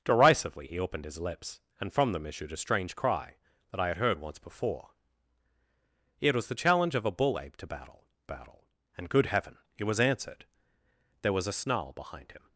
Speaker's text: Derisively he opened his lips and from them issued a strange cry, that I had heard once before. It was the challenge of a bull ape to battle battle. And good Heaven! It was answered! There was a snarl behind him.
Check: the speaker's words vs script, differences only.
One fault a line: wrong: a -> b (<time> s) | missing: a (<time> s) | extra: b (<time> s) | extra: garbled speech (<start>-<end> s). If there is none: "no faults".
no faults